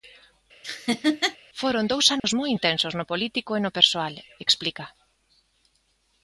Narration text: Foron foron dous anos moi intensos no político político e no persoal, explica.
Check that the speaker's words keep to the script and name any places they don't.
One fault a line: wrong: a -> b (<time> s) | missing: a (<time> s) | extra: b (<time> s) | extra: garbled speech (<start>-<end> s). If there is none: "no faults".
missing: foron (1.8 s)
missing: político (3.5 s)